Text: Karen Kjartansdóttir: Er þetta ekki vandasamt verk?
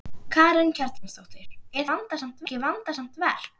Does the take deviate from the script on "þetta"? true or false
true